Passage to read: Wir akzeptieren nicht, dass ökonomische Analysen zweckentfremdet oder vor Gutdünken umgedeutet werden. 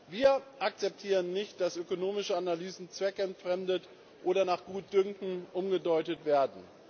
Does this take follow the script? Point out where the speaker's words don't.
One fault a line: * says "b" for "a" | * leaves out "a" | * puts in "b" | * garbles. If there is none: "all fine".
* says "nach" for "vor"